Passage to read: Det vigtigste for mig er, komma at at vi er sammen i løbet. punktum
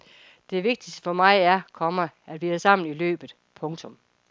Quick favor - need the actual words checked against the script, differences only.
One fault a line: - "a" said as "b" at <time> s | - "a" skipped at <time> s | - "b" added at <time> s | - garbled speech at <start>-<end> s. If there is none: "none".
- "at" skipped at 2.4 s